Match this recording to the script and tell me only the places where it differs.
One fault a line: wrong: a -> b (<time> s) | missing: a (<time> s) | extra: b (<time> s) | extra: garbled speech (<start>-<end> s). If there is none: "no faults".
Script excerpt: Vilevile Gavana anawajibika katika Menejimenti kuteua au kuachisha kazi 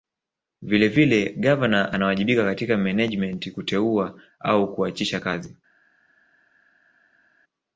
no faults